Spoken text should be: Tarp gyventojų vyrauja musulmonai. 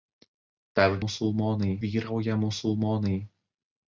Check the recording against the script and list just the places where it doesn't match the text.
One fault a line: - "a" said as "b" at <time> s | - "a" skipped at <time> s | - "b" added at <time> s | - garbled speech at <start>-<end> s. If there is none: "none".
- "gyventojų" said as "musulmonai" at 1.0 s